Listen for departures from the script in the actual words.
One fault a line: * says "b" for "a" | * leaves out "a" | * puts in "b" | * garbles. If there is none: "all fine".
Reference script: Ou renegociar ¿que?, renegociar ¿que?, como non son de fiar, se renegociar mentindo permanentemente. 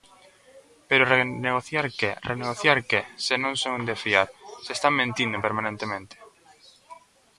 * says "Pero" for "Ou"
* says "se" for "como"
* says "están" for "renegociar"